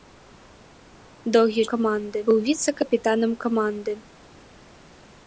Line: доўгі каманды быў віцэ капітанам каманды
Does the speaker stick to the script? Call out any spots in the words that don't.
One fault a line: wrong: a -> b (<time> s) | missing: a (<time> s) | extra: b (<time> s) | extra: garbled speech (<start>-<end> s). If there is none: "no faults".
no faults